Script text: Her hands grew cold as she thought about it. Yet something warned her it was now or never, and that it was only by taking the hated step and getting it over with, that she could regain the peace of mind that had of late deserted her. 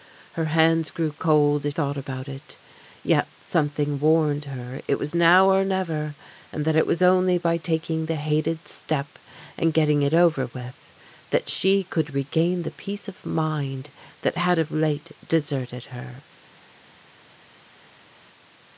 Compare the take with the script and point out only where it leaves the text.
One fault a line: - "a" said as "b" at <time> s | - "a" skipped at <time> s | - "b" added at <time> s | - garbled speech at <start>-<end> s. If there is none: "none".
- "she" skipped at 1.8 s